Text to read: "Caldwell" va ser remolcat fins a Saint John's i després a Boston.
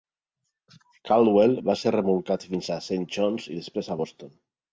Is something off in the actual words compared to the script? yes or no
no